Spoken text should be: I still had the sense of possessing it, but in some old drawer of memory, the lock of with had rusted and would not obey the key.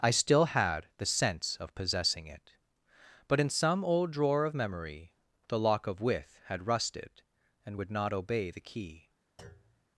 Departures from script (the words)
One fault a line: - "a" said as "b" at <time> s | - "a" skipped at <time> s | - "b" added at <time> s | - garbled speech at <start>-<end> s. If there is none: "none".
none